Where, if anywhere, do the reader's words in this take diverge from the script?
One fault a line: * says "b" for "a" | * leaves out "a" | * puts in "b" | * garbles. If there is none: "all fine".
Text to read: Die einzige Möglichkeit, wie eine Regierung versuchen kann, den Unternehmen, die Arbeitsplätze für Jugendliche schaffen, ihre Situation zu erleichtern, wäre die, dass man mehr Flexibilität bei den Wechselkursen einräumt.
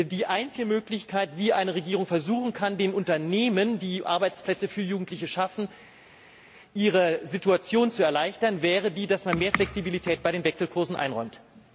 all fine